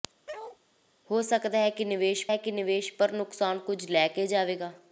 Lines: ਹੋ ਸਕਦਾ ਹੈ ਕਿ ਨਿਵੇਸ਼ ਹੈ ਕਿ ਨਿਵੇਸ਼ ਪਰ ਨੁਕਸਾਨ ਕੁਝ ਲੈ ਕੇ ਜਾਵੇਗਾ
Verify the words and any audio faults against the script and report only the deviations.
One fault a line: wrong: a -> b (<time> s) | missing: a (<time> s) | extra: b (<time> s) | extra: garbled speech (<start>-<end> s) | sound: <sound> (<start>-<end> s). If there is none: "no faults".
sound: bark (0.3-0.6 s)